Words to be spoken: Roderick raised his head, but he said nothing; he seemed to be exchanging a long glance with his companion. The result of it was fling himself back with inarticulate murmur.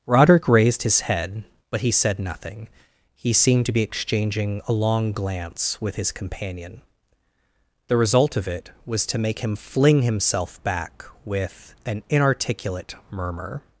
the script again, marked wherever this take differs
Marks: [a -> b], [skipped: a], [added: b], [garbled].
Roderick raised his head, but he said nothing; he seemed to be exchanging a long glance with his companion. The result of it was [added: to make him] fling himself back with [added: an] inarticulate murmur.